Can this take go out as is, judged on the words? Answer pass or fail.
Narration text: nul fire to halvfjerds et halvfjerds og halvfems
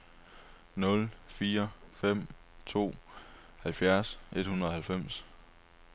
fail